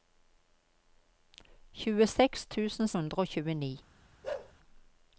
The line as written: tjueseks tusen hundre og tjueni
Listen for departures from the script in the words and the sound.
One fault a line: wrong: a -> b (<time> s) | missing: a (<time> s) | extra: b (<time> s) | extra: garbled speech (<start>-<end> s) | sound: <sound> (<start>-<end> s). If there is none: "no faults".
sound: bark (4.2-4.5 s)